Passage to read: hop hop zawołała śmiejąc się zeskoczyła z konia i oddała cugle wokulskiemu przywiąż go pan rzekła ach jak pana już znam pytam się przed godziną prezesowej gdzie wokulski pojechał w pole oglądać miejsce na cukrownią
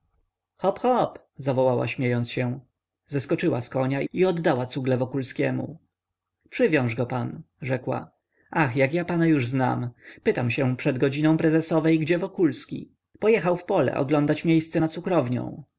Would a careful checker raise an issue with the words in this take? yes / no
yes